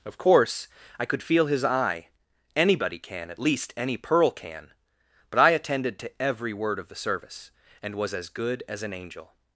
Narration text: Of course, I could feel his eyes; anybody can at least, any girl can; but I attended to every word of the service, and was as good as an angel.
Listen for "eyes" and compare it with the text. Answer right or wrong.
wrong